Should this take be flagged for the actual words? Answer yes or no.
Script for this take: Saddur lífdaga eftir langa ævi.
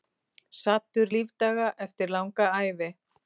no